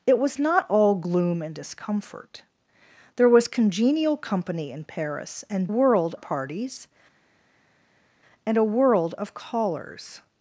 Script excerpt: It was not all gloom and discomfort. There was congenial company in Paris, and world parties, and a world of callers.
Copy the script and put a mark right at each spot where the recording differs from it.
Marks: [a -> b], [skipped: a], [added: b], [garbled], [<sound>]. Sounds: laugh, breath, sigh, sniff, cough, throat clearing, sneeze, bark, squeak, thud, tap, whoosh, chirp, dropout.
It was not all gloom and discomfort. There was congenial company in Paris, and world parties, and a world of callers.